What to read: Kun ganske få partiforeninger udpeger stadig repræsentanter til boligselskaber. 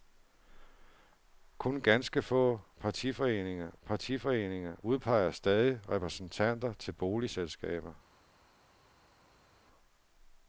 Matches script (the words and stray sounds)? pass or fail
fail